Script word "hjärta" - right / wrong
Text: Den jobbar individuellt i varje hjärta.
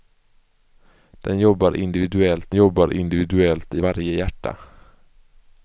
right